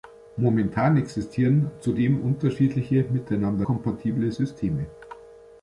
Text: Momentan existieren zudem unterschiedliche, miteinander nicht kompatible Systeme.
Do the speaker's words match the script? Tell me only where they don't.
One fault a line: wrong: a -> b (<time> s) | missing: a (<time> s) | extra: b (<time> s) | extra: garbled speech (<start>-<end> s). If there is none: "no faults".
missing: nicht (3.7 s)